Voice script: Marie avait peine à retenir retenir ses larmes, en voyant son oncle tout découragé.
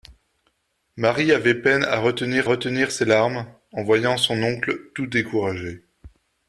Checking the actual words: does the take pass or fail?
pass